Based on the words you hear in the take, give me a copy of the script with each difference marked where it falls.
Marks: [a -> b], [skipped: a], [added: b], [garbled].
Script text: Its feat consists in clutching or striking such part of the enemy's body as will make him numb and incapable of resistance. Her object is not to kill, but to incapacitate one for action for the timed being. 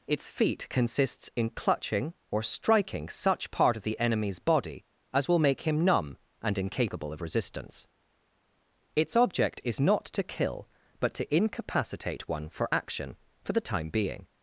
Its feat consists in clutching or striking such part of the enemy's body as will make him numb and incapable of resistance. [Her -> Its] object is not to kill, but to incapacitate one for action for the [timed -> time] being.